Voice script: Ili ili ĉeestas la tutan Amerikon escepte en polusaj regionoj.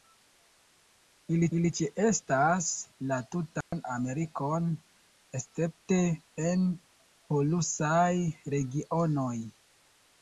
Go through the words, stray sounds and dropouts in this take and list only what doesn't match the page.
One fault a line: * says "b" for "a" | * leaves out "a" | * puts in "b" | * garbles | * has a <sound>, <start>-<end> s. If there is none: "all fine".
* has a dropout, 3.6-3.7 s